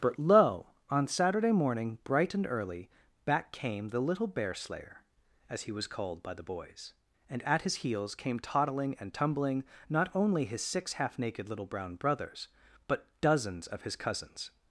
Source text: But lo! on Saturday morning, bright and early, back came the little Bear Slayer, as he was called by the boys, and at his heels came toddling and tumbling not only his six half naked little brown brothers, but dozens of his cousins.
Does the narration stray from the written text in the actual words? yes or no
no